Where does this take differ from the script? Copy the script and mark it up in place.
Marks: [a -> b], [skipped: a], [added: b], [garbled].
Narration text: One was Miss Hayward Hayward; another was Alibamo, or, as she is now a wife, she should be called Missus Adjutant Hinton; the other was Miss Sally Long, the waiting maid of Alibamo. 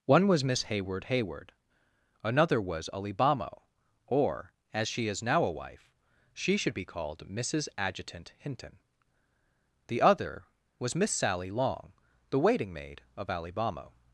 One was Miss Hayward Hayward; another was Alibamo, or, as she is now a wife, she should be called Missus Adjutant Hinton; the other was Miss Sally Long, the waiting maid of Alibamo.